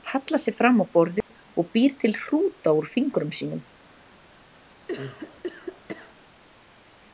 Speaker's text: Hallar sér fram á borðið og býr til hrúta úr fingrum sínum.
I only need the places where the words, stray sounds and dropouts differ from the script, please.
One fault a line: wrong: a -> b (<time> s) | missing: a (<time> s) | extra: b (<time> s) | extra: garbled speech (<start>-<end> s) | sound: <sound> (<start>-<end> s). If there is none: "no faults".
sound: dropout (1.2-1.3 s)
sound: cough (4.9-6.1 s)